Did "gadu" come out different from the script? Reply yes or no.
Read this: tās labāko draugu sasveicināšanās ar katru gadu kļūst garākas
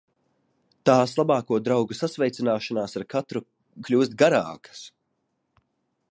yes